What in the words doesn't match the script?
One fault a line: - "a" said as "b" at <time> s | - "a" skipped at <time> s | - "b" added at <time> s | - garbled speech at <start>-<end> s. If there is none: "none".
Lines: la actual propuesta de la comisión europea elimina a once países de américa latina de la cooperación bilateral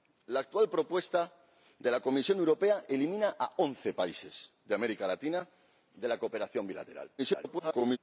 - garbled speech at 7.2-8.0 s